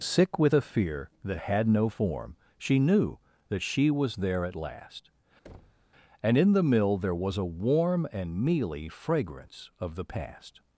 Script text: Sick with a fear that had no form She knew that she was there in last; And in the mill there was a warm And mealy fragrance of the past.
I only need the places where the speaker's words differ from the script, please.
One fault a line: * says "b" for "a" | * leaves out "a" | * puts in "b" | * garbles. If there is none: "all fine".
* says "at" for "in"